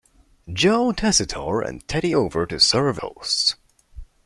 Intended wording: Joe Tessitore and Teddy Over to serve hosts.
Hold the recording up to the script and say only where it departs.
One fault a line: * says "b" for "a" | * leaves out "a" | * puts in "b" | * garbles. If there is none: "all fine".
all fine